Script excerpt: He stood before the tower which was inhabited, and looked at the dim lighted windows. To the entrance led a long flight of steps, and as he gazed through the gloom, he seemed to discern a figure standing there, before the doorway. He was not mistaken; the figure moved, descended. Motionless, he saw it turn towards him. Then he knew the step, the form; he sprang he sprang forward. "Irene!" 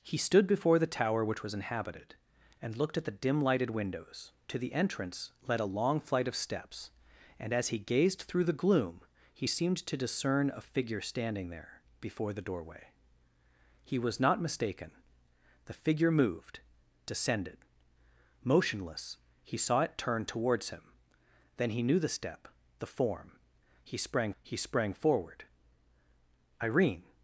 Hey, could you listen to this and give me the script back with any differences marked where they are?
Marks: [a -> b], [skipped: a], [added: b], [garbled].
He stood before the tower which was inhabited, and looked at the dim lighted windows. To the entrance led a long flight of steps, and as he gazed through the gloom, he seemed to discern a figure standing there, before the doorway. He was not mistaken; the figure moved, descended. Motionless, he saw it turn towards him. Then he knew the step, the form; he sprang he sprang forward. "Irene!"